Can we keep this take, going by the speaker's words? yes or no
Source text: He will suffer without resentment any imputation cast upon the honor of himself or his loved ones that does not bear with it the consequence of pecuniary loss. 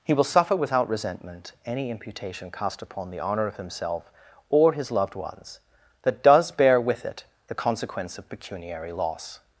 no